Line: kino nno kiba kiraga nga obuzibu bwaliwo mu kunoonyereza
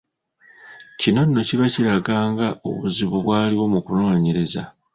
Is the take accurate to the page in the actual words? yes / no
yes